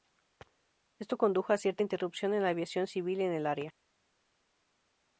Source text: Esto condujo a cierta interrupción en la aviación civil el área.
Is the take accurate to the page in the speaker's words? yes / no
no